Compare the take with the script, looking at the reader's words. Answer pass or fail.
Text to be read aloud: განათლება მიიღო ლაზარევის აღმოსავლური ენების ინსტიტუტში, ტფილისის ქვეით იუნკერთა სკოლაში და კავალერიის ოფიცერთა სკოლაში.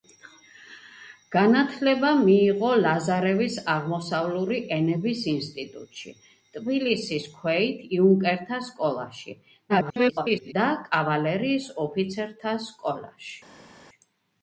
fail